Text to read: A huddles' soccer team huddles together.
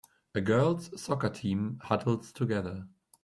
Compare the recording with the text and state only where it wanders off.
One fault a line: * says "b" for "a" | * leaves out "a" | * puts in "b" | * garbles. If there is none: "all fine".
* says "girls" for "huddles"